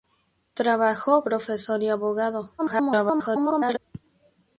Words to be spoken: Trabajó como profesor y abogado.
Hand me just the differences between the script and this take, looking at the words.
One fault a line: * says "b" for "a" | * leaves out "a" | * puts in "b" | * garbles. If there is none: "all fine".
* leaves out "como"
* garbles